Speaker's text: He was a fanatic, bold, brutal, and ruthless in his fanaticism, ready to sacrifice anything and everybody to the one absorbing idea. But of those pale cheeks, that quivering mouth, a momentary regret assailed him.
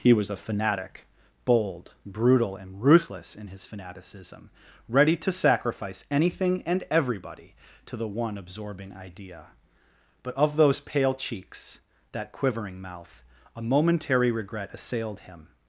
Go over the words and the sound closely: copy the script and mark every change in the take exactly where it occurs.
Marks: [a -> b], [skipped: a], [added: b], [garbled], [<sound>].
He was a fanatic, bold, brutal, and ruthless in his fanaticism, ready to sacrifice anything and everybody to the one absorbing idea. But of those pale cheeks, that quivering mouth, a momentary regret assailed him.